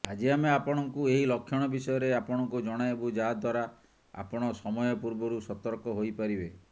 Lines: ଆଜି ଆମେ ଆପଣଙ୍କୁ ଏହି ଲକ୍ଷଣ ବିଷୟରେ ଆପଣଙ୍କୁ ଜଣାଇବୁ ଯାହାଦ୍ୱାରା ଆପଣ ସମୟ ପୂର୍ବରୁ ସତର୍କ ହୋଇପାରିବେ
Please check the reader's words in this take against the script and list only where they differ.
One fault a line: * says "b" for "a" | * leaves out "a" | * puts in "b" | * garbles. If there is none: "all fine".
all fine